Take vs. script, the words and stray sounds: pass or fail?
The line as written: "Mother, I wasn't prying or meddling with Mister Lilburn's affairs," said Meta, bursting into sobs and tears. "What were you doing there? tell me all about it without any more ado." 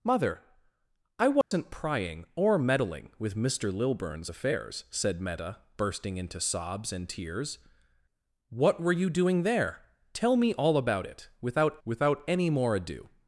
fail